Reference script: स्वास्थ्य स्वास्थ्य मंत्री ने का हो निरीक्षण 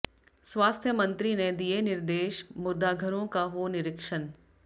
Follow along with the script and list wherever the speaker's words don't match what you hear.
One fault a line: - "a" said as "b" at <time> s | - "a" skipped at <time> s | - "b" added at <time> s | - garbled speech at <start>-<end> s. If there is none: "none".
- "स्वास्थ्य" skipped at 0.9 s
- "दिए निर्देश मुर्दाघरों" added at 1.5 s